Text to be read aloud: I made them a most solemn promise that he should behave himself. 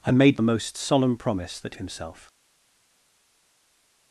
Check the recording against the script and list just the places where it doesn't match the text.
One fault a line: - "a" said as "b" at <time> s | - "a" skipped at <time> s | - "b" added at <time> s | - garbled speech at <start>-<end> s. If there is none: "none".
- "them" skipped at 0.4 s
- "he should behave" skipped at 1.8 s